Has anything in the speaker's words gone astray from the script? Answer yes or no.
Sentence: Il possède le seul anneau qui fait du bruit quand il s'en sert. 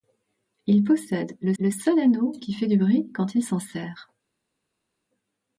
yes